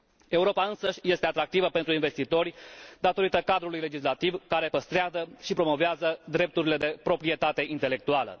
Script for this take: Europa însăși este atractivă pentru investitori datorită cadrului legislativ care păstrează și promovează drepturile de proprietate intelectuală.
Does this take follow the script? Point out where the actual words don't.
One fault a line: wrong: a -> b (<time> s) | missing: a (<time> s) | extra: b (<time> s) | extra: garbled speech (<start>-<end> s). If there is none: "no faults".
no faults